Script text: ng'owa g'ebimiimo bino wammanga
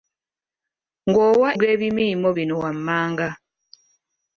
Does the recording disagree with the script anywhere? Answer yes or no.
no